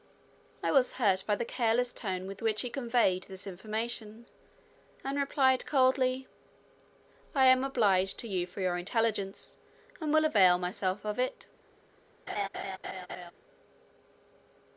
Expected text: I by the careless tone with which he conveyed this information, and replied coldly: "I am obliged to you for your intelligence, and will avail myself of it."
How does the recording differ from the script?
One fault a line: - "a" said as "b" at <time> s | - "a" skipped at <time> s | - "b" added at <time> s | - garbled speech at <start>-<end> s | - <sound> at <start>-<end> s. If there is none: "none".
- "was hurt" added at 0.7 s
- laugh at 12.3-13.3 s